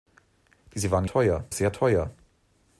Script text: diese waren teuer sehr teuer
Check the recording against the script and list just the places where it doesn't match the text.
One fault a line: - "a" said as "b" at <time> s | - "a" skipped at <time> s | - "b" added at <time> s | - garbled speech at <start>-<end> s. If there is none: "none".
none